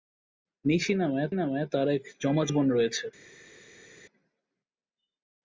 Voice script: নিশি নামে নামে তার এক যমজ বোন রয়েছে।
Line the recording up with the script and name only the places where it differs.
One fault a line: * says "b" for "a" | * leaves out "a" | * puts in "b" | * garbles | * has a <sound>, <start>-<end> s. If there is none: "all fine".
all fine